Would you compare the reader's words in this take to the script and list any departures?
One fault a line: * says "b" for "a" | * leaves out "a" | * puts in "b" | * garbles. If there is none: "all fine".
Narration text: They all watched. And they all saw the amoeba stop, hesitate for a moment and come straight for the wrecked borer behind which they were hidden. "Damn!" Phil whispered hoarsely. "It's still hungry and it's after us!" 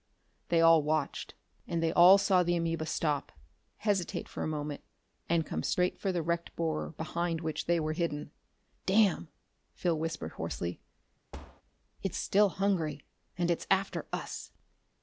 all fine